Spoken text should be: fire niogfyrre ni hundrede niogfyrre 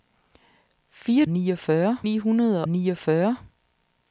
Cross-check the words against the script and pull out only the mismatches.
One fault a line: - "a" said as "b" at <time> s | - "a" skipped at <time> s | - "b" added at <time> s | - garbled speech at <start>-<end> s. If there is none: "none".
none